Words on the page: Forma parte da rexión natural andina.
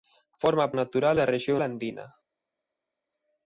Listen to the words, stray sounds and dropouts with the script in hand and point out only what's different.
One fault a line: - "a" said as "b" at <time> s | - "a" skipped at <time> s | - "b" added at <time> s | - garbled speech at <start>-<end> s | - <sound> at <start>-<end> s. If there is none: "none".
- "parte" said as "natural" at 0.7 s
- "natural" skipped at 1.6 s